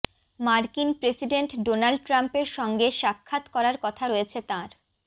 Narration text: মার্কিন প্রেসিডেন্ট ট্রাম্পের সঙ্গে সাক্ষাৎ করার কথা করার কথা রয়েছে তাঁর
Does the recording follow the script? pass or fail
fail